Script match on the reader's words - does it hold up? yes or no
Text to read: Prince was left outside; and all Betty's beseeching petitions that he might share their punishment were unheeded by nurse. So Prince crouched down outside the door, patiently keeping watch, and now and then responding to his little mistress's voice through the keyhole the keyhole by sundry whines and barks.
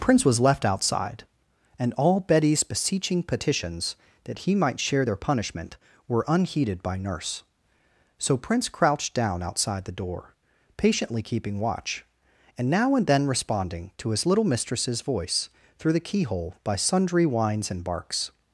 no